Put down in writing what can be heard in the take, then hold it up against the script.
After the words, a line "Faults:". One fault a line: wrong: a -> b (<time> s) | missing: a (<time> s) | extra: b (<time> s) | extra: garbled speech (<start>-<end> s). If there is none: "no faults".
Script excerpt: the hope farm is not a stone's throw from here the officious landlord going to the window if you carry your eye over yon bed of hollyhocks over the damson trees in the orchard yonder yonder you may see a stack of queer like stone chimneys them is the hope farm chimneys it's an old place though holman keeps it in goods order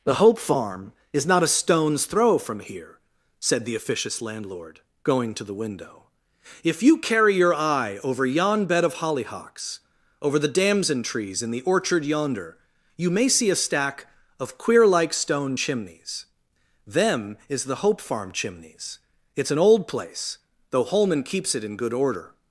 the hope farm is not a stone's throw from here said the officious landlord going to the window if you carry your eye over yon bed of hollyhocks over the damson trees in the orchard yonder you may see a stack of queer like stone chimneys them is the hope farm chimneys it's an old place though holman keeps it in good order
Faults:
extra: said (3.4 s)
missing: yonder (12.6 s)
wrong: goods -> good (21.7 s)